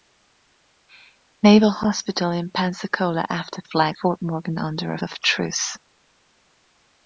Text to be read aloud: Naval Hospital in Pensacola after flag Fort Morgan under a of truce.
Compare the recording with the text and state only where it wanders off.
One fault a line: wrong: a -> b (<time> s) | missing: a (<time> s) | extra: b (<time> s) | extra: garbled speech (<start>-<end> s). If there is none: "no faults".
no faults